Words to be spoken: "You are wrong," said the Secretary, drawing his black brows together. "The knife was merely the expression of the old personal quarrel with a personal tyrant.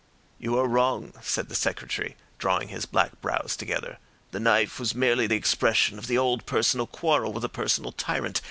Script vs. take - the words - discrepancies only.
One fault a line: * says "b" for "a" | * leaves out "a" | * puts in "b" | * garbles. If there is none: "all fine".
all fine